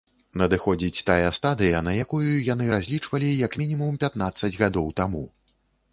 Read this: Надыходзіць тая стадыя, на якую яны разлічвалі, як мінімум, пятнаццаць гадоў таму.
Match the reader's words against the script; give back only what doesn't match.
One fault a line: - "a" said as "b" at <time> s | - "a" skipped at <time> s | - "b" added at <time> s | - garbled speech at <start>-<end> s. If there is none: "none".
none